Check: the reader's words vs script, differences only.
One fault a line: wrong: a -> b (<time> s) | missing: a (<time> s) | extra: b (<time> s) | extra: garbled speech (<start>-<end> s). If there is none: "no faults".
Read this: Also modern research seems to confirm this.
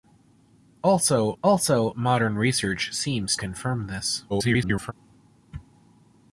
extra: also (1.4 s)
missing: to (3.4 s)
extra: garbled speech (4.3-4.9 s)